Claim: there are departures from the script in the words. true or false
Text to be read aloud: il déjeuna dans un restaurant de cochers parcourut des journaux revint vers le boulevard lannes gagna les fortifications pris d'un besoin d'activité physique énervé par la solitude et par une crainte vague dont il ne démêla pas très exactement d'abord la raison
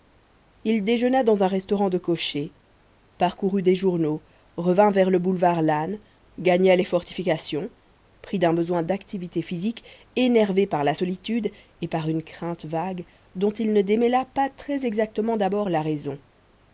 false